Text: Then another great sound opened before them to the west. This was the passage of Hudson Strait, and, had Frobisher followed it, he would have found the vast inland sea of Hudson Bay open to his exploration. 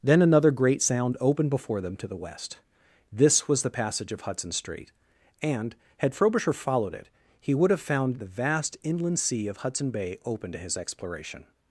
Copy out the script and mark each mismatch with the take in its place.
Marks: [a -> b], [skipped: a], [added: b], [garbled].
Then another great sound opened before them to the west. This was the passage of Hudson Strait, and, had Frobisher followed it, he would have found the vast inland sea of Hudson Bay open to his exploration.